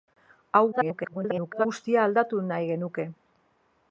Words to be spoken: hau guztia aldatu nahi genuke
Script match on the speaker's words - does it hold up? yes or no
no